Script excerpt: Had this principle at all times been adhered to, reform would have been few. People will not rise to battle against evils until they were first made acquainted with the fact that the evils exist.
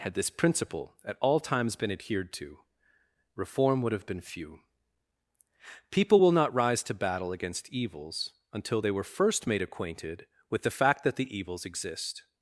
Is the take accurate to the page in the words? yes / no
yes